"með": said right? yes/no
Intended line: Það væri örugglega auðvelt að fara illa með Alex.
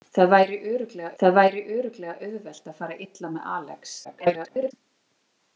yes